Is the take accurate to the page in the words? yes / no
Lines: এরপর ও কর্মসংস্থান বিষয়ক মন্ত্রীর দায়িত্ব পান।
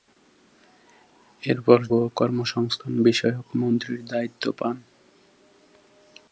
yes